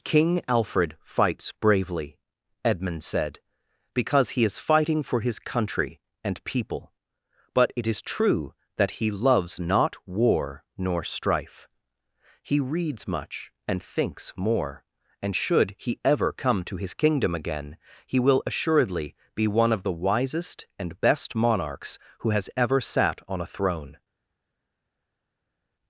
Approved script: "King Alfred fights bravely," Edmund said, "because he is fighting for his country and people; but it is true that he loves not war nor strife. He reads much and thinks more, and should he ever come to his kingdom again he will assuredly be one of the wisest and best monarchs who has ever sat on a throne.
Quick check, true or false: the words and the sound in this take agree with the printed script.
true